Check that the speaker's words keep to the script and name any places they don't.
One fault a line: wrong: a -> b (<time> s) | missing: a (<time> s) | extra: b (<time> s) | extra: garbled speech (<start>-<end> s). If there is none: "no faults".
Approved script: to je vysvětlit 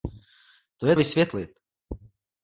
no faults